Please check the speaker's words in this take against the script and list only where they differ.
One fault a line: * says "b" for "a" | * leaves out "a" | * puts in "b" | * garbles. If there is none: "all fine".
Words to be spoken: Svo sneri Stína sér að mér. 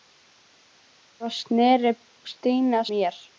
* leaves out "sér að"